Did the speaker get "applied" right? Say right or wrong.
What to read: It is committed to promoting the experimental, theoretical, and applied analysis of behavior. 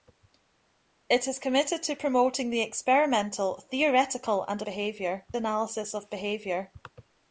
wrong